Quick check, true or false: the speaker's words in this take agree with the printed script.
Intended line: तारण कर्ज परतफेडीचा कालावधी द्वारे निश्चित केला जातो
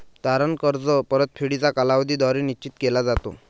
true